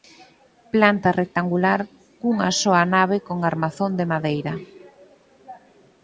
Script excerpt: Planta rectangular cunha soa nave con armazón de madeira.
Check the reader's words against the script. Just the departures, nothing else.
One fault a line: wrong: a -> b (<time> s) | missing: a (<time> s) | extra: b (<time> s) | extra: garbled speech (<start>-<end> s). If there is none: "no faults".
no faults